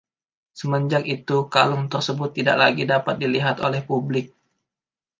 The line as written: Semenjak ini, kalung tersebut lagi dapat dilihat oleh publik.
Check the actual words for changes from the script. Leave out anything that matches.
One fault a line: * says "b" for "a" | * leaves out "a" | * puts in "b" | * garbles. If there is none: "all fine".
* says "itu" for "ini"
* puts in "tidak"